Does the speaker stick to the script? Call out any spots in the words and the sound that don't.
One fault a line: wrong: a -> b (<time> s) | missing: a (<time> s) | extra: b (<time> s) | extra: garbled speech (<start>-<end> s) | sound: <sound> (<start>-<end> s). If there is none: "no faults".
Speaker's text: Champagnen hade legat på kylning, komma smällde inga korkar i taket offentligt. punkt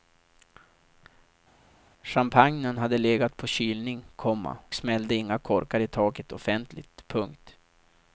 no faults